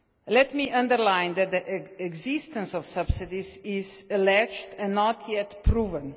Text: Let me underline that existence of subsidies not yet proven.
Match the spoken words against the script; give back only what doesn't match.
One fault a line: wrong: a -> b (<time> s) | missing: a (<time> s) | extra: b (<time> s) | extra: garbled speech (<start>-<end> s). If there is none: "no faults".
extra: the (1.5 s)
extra: is alleged and (3.6 s)